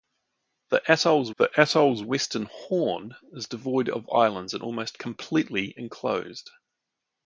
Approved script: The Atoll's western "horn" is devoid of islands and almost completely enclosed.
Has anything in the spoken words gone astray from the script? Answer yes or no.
yes